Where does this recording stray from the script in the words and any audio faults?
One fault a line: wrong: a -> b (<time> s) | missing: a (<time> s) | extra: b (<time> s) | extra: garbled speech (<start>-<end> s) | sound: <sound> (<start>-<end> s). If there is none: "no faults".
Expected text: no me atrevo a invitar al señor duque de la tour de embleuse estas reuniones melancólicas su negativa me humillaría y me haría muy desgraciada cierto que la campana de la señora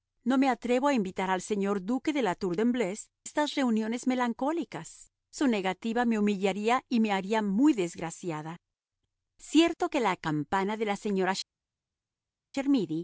no faults